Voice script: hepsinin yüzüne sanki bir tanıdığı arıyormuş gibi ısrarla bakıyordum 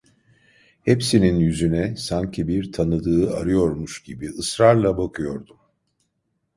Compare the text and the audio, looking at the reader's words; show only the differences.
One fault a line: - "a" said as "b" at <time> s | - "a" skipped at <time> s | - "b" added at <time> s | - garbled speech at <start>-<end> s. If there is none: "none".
none